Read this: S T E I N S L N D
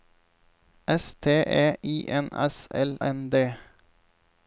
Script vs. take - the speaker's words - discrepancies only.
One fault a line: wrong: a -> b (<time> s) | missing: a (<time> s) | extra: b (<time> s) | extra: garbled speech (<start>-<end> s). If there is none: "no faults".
no faults